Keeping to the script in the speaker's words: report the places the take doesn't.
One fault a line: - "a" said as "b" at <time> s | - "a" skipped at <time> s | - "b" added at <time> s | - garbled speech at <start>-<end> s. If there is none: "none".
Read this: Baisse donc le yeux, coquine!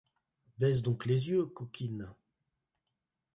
- "le" said as "les" at 1.0 s